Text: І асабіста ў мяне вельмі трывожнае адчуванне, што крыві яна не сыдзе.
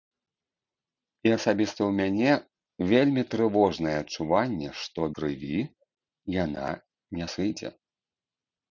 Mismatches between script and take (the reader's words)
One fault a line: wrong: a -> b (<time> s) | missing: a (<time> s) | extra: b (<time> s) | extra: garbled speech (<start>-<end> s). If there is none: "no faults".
no faults